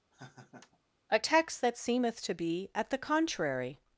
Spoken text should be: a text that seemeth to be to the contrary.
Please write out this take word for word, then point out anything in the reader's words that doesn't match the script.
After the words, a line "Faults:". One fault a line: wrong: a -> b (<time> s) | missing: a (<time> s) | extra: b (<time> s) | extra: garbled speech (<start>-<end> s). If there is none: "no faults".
a text that seemeth to be at the contrary.
Faults:
wrong: to -> at (2.7 s)